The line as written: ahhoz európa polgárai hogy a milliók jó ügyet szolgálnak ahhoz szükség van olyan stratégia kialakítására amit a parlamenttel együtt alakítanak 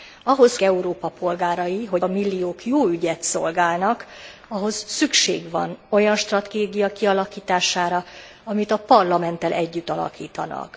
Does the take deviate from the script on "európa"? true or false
false